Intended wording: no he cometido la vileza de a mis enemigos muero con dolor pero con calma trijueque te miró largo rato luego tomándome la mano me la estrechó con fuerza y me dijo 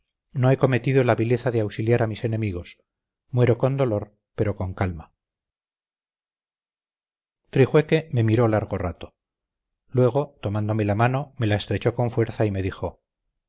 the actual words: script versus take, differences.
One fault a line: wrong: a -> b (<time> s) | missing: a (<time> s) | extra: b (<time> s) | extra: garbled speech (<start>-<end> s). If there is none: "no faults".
extra: auxiliar (1.6 s)
wrong: te -> me (8.1 s)